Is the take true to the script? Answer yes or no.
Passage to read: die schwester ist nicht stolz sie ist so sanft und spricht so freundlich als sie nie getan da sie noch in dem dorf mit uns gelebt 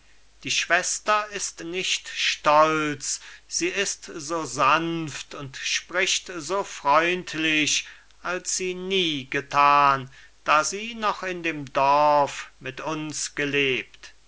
yes